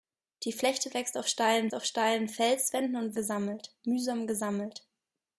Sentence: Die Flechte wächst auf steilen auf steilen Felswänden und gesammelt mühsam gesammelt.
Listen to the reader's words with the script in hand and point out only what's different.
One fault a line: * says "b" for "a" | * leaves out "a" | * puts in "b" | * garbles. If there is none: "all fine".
all fine